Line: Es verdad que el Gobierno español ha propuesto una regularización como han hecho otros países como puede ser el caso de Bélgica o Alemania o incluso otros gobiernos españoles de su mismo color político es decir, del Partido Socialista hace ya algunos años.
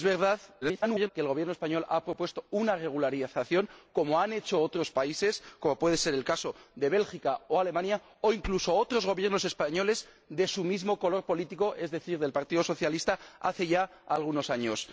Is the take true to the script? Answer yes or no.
no